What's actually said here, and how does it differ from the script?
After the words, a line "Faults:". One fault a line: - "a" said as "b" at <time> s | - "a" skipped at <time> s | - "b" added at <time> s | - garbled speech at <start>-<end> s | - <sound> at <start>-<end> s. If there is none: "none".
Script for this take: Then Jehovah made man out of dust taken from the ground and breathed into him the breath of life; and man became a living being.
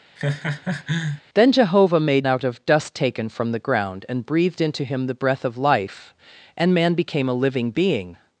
Then Jehovah made out of dust taken from the ground and breathed into him the breath of life; and man became a living being.
Faults:
- laugh at 0.2-1.2 s
- "man" skipped at 2.3 s